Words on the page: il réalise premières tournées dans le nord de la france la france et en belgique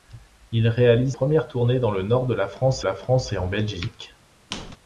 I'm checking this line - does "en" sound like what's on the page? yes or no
yes